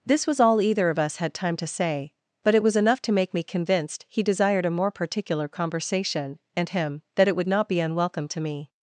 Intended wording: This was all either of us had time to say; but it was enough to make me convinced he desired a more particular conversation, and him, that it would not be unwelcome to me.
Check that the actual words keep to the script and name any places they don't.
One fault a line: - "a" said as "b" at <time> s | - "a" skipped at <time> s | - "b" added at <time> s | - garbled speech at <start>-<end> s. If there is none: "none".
none